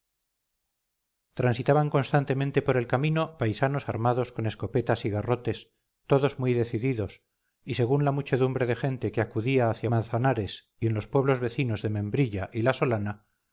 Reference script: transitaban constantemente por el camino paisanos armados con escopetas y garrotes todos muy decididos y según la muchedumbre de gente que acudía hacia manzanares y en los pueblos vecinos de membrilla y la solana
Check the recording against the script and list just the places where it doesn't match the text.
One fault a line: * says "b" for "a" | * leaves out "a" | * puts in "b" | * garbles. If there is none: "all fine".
all fine